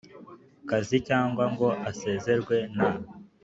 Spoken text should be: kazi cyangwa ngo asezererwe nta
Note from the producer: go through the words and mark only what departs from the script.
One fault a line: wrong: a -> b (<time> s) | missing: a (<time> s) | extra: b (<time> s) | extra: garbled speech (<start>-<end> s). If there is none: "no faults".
no faults